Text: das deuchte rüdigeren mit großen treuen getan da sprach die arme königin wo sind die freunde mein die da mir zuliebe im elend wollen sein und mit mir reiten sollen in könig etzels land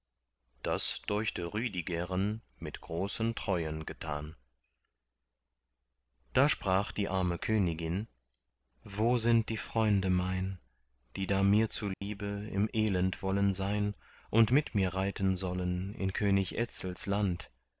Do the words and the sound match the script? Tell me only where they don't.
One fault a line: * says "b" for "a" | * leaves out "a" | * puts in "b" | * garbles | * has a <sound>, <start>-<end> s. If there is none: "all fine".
* has a dropout, 11.9-12.0 s